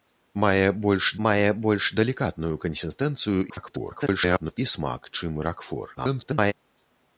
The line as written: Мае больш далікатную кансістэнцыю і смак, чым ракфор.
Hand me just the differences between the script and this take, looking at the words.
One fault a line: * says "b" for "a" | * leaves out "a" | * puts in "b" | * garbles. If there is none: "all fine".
* puts in "мае больш"
* garbles
* garbles